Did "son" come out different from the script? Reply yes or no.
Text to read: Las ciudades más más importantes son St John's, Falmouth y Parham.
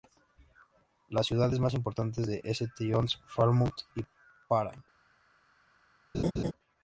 no